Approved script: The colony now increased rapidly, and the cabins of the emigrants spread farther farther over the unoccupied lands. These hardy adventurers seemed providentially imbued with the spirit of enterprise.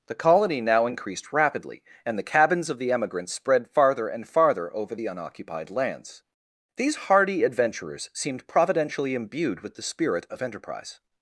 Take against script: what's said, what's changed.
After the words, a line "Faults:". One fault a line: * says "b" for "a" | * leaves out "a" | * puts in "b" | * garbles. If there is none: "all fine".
The colony now increased rapidly, and the cabins of the emigrants spread farther and farther over the unoccupied lands. These hardy adventurers seemed providentially imbued with the spirit of enterprise.
Faults:
* puts in "and"